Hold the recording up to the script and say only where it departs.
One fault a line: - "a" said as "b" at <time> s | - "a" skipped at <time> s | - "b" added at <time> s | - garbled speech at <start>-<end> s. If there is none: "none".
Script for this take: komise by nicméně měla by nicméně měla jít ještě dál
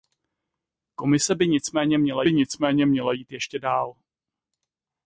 none